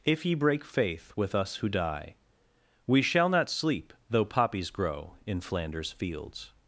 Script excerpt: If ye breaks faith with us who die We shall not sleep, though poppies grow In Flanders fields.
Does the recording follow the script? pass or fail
fail